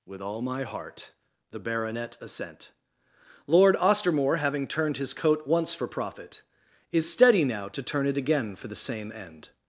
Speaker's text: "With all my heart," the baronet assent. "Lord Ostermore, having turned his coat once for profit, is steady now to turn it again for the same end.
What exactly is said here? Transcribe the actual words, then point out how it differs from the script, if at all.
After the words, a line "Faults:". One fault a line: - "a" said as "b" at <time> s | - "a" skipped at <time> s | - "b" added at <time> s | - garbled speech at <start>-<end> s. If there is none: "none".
"With all my heart," the baronet assent. "Lord Ostermore, having turned his coat once for profit, is steady now to turn it again for the same end.
Faults:
none